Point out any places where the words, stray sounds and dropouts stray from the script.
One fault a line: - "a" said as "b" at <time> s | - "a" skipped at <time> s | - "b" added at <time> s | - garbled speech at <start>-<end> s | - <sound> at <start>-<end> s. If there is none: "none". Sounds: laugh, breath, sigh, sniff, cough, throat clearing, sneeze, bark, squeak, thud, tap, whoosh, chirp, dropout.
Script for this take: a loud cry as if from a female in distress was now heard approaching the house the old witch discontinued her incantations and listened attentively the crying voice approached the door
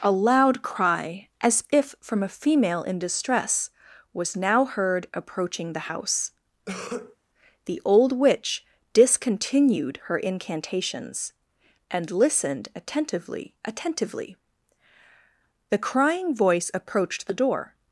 - cough at 6.7-7.2 s
- "attentively" added at 13.6 s